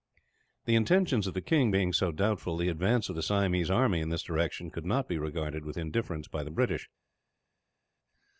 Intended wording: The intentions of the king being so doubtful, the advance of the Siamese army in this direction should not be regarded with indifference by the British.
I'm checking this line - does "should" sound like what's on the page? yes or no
no